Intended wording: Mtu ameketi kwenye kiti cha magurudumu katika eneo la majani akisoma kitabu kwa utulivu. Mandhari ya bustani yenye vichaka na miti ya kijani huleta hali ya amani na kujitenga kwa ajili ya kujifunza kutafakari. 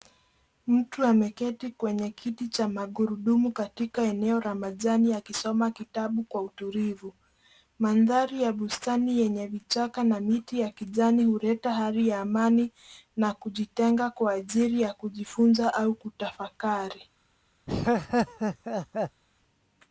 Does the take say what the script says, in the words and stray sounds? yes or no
no